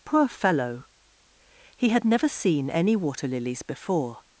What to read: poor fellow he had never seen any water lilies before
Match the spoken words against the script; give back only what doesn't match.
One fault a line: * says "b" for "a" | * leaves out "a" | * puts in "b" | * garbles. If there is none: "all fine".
all fine